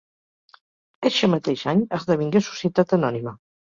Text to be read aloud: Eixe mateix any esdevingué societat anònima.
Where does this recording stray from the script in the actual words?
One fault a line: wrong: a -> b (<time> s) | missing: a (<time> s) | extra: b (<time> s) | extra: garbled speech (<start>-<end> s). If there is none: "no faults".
no faults